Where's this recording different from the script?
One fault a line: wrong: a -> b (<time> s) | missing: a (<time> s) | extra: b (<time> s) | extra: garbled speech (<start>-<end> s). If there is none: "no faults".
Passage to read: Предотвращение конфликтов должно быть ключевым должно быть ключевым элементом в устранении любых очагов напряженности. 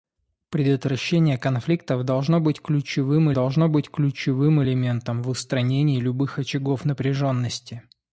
no faults